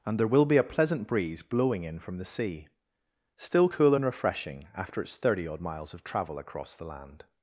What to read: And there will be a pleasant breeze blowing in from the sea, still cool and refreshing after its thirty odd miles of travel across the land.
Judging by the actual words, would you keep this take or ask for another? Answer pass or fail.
pass